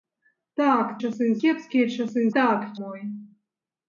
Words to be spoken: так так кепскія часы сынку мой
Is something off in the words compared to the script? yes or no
yes